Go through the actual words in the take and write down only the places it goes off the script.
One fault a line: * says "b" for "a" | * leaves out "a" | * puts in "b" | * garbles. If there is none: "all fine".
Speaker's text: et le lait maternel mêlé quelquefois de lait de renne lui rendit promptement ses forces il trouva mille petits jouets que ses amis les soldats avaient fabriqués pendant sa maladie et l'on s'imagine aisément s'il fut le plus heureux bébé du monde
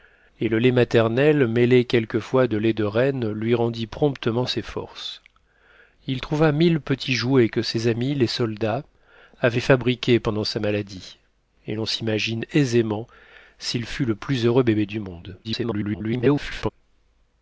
* garbles